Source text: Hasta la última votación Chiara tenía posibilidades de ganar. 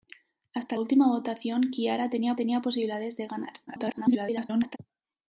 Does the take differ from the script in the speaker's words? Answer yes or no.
yes